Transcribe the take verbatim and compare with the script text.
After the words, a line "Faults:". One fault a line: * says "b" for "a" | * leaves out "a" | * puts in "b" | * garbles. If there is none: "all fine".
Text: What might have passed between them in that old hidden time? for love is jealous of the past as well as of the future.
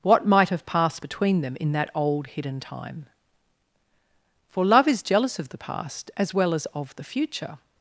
What might have passed between them in that old hidden time? for love is jealous of the past as well as of the future.
Faults:
all fine